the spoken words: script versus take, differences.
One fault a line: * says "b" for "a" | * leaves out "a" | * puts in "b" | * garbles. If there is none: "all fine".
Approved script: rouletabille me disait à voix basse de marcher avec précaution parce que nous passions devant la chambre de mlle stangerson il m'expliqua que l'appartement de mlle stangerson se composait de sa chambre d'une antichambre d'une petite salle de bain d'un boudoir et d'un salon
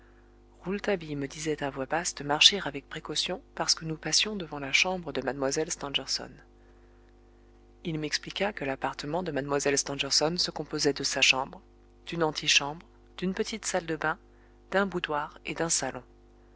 all fine